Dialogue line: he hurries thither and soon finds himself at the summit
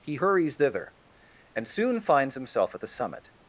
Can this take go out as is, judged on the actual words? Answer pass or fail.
pass